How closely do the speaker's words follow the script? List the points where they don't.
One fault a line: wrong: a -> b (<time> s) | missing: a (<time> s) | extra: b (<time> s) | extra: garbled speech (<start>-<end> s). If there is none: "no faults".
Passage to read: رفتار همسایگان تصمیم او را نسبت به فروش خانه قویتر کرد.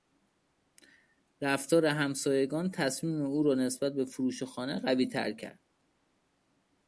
no faults